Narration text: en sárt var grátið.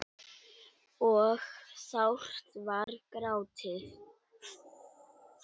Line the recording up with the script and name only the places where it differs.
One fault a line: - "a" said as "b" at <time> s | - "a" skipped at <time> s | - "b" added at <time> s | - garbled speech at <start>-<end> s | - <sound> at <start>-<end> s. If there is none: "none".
- "en" said as "og" at 1.1 s
- dropout at 2.8-2.9 s